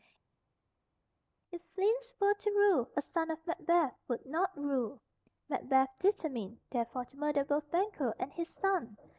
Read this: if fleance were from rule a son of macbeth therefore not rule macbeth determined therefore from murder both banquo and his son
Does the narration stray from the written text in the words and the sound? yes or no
yes